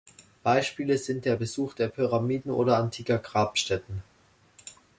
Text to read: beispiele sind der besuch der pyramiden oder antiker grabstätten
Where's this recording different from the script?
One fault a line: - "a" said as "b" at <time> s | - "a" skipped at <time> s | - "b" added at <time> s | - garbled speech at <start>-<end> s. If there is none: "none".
none